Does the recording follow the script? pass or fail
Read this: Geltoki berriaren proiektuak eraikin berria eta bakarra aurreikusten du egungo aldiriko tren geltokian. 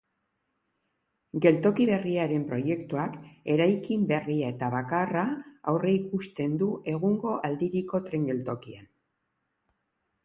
pass